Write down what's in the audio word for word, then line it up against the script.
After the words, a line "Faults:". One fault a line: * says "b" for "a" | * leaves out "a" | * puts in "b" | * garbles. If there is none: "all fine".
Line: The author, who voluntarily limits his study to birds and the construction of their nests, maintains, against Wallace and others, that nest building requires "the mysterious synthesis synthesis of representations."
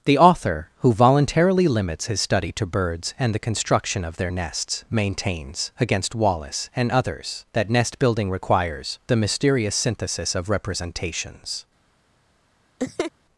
The author, who voluntarily limits his study to birds and the construction of their nests, maintains, against Wallace and others, that nest building requires "the mysterious synthesis of representations."
Faults:
* leaves out "synthesis"